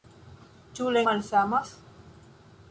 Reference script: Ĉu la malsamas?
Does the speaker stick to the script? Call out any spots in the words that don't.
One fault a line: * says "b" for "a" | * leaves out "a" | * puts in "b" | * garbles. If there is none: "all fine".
all fine